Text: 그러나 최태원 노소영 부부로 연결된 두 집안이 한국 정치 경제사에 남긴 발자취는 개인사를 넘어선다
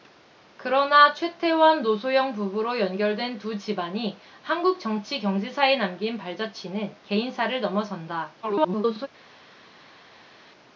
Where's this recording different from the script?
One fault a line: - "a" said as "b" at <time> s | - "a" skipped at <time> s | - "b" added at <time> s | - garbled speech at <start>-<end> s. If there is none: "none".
- garbled speech at 8.4-9.1 s